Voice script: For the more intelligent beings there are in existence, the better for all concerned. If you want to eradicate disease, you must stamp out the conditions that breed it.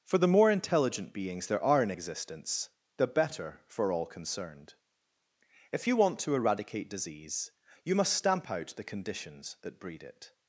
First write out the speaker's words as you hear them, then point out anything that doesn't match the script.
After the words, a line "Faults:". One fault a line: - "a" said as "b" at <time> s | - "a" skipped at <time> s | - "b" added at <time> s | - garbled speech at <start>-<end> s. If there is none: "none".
For the more intelligent beings there are in existence, the better for all concerned. If you want to eradicate disease, you must stamp out the conditions that breed it.
Faults:
none